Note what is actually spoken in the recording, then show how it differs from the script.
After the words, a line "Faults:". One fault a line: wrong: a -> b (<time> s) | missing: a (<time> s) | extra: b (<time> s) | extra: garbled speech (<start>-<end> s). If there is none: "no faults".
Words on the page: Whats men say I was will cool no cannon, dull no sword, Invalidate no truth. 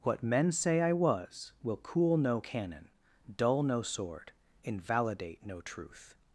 What men say I was will cool no cannon, dull no sword, Invalidate no truth.
Faults:
wrong: Whats -> What (0.0 s)